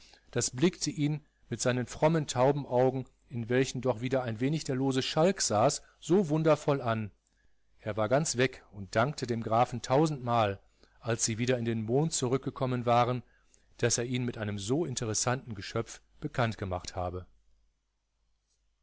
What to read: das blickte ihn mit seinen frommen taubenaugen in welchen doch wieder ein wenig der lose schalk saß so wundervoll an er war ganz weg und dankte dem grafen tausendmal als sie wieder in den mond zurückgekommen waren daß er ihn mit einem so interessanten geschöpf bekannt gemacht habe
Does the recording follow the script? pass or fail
pass